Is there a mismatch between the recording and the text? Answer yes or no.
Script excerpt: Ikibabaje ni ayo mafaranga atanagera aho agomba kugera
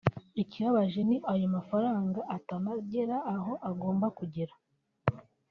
no